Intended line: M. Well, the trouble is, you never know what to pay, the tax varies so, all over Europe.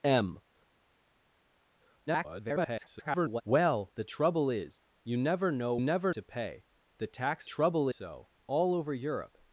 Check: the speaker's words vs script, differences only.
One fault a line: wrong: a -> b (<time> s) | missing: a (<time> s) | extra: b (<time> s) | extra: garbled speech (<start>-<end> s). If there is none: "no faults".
extra: garbled speech (2.1-3.4 s)
wrong: what -> never (5.8 s)
wrong: varies -> trouble (7.4 s)